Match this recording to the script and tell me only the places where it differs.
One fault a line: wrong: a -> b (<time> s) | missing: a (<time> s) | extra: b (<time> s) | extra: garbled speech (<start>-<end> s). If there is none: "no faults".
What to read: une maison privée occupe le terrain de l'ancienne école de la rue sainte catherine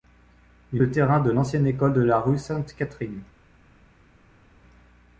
missing: maison privée occupe (0.8 s)